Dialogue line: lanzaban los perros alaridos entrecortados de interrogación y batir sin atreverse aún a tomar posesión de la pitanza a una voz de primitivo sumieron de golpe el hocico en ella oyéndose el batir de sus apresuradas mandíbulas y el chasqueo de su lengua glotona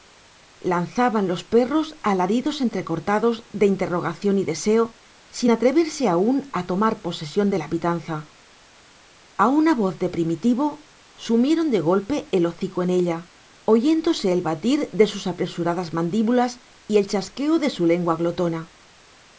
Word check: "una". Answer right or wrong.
right